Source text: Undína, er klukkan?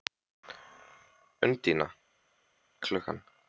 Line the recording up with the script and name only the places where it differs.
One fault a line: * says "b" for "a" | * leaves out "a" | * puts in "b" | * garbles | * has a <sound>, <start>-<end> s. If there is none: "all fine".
all fine